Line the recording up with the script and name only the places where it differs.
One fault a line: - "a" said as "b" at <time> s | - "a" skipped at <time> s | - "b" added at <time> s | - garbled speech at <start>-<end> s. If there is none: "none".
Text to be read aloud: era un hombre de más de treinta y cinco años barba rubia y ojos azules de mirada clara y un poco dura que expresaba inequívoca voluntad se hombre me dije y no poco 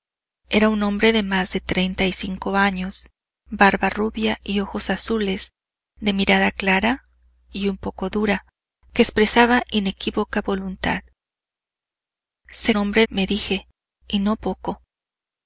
none